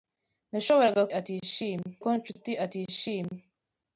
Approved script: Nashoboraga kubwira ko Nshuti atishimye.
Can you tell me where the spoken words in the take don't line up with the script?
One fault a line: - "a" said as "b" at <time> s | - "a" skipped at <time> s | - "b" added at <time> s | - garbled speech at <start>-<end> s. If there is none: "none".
- "kubwira" said as "atishimye" at 1.2 s